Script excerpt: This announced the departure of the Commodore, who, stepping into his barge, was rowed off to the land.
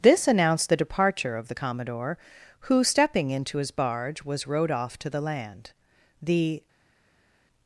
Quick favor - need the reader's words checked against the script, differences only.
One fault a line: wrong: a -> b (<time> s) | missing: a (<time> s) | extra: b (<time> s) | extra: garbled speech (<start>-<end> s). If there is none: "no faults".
extra: The (6.2 s)